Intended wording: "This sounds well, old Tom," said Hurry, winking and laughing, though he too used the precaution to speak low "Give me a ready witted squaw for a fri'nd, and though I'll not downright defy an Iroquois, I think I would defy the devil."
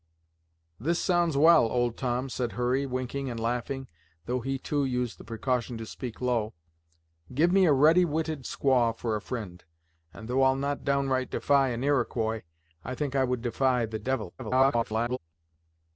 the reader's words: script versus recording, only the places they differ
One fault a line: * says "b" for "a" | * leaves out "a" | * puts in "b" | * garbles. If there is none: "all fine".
* garbles